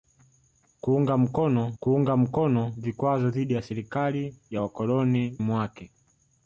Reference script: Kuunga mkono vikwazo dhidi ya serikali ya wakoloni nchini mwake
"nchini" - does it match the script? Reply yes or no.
no